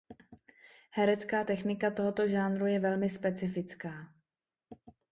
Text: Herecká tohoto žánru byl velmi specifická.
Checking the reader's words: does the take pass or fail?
fail